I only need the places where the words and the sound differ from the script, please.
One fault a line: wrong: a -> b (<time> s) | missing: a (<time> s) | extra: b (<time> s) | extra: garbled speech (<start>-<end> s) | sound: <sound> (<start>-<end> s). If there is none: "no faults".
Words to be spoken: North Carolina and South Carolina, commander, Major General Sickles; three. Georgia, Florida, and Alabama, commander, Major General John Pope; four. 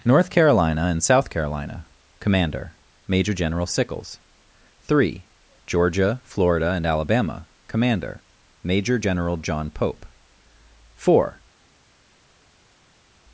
no faults